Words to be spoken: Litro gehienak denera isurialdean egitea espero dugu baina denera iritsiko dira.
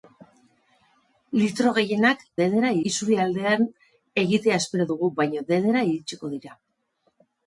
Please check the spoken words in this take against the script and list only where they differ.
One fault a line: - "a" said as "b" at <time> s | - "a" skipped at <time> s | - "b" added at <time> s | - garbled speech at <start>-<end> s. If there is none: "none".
none